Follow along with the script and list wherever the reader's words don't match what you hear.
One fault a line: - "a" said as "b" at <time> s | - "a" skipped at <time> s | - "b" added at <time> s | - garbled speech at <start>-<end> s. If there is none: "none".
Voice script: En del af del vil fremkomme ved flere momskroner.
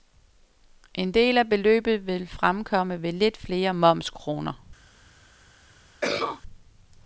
- "del" said as "beløbet" at 1.5 s
- "lidt" added at 3.1 s